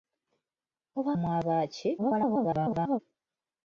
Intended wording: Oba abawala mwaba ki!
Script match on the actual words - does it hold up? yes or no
no